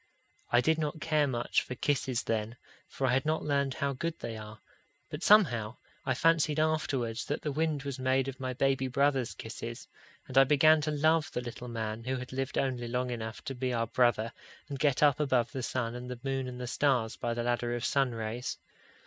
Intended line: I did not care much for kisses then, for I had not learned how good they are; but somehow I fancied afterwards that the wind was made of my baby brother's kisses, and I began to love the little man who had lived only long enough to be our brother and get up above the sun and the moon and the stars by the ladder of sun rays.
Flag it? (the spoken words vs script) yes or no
no